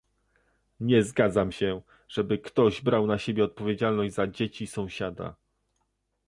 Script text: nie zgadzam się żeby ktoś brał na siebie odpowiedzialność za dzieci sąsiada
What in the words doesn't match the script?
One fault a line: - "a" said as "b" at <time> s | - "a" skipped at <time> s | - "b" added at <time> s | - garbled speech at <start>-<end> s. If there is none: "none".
none